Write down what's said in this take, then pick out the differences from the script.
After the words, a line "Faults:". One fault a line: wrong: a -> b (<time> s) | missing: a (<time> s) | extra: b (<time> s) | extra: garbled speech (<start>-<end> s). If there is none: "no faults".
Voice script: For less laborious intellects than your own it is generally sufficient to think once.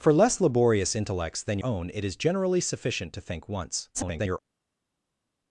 For less laborious intellects than own it is generally sufficient to think once. [garbled]
Faults:
missing: your (1.6 s)
extra: garbled speech (3.9-4.4 s)